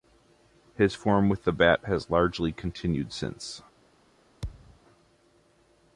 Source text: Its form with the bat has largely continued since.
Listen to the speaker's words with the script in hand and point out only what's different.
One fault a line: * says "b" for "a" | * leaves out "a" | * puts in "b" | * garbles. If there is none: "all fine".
* says "His" for "Its"